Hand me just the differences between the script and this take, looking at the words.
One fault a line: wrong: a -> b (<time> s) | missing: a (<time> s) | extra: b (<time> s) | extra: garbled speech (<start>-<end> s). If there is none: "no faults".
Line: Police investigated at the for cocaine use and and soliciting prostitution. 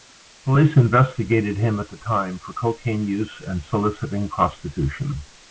extra: him (1.6 s)
extra: time (2.0 s)
missing: and (3.6 s)